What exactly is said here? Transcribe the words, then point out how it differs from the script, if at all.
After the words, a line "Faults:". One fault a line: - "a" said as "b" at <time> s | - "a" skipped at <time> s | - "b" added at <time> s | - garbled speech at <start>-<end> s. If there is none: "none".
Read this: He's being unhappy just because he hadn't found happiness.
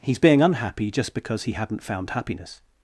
He's being unhappy just because he hadn't found happiness.
Faults:
none